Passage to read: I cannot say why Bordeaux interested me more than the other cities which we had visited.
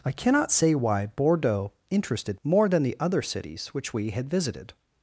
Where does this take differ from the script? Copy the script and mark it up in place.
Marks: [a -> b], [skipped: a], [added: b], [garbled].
I cannot say why Bordeaux interested [skipped: me] more than the other cities which we had visited.